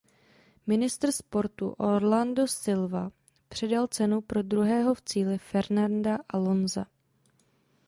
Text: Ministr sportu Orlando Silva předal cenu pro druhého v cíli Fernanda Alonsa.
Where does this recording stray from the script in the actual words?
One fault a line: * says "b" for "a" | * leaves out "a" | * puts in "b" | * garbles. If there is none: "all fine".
all fine